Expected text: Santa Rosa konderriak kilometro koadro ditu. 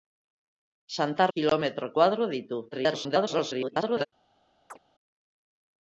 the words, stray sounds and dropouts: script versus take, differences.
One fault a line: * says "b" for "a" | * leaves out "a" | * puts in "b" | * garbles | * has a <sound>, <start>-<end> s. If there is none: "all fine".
* leaves out "Rosa konderriak"
* garbles
* has a chirp, 4.7-4.8 s